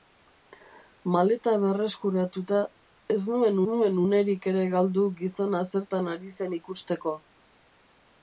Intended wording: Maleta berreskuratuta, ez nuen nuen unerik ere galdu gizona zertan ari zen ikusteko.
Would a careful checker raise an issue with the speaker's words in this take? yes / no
no